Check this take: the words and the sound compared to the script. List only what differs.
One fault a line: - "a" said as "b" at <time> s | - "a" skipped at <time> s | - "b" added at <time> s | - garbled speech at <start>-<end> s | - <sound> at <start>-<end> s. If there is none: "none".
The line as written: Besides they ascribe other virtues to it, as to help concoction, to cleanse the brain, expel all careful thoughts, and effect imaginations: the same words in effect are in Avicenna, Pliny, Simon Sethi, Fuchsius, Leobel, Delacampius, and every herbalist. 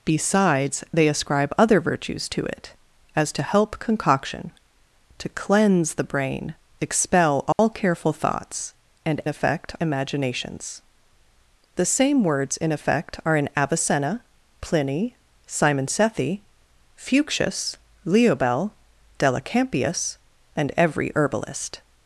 - dropout at 7.5-7.6 s